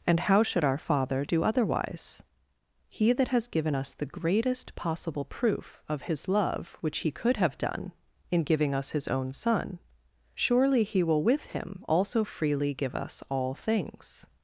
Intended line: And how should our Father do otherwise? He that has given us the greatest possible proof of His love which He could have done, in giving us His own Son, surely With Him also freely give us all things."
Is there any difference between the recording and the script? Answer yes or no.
yes